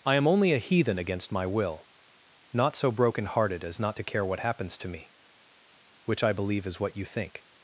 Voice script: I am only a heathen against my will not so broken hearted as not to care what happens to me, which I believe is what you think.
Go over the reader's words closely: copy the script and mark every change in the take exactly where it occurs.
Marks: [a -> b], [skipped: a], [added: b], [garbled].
I am only a heathen against my will not so broken hearted as not to care what happens to me, which I believe is what you think.